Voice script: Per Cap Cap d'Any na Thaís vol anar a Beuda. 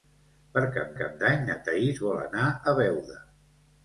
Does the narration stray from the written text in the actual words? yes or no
no